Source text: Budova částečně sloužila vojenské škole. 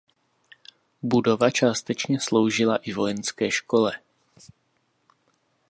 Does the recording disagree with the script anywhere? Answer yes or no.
yes